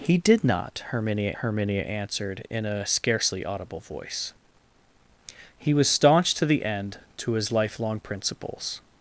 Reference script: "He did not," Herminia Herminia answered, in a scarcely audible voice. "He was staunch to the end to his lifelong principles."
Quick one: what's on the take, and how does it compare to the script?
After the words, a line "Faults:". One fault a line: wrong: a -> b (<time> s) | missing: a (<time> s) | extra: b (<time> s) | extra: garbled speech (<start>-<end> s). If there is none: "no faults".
"He did not," Herminia Herminia answered, in a scarcely audible voice. "He was staunch to the end to his lifelong principles."
Faults:
no faults